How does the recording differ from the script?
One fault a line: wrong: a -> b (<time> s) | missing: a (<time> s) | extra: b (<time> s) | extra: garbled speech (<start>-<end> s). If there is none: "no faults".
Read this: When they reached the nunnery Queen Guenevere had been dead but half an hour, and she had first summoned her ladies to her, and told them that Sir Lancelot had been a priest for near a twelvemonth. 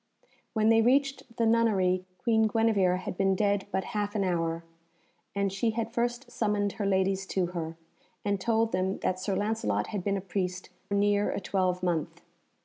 missing: for (10.7 s)